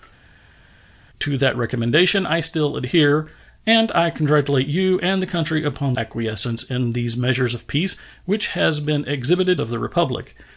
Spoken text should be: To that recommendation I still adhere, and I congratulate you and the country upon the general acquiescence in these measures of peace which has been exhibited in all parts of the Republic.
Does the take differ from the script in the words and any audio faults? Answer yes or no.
yes